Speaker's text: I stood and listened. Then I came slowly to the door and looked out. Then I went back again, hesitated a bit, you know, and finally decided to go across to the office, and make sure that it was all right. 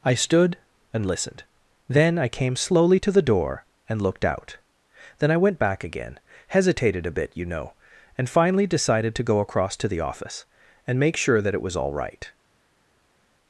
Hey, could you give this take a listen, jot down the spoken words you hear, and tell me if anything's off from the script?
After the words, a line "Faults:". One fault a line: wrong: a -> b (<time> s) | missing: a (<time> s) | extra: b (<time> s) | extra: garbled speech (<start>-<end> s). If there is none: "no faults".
I stood and listened. Then I came slowly to the door and looked out. Then I went back again, hesitated a bit, you know, and finally decided to go across to the office, and make sure that it was all right.
Faults:
no faults